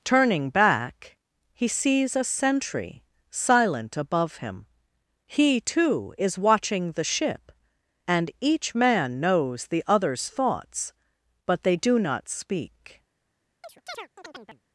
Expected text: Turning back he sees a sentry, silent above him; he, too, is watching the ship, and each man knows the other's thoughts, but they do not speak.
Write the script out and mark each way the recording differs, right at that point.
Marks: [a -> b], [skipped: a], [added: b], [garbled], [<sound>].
Turning back he sees a sentry, silent above him; he, too, is watching the ship, and each man knows the other's thoughts, but they do not speak. [chirp]